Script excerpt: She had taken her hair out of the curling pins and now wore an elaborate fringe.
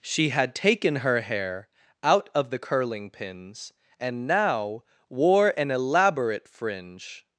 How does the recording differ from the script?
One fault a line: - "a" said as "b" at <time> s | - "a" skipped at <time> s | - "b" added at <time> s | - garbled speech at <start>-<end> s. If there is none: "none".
none